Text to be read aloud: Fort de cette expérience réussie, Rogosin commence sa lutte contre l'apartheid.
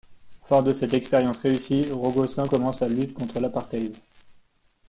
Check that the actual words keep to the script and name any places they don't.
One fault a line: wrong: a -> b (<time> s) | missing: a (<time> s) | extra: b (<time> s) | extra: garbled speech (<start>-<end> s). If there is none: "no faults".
no faults